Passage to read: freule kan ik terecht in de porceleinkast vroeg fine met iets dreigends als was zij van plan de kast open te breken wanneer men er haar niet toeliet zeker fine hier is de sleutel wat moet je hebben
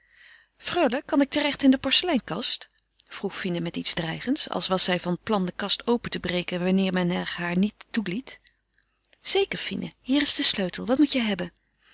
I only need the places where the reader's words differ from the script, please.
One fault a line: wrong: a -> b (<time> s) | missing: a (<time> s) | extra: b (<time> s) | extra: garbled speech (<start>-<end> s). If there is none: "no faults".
no faults